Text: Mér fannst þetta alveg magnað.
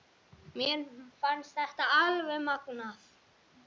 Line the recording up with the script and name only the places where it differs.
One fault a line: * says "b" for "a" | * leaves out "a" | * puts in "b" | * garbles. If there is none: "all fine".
all fine